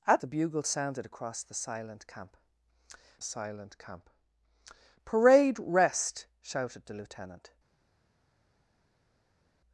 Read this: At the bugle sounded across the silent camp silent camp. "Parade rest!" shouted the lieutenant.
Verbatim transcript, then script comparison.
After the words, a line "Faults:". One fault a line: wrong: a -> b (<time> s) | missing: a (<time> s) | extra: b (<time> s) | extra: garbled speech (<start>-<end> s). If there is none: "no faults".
At the bugle sounded across the silent camp silent camp. "Parade rest!" shouted the lieutenant.
Faults:
no faults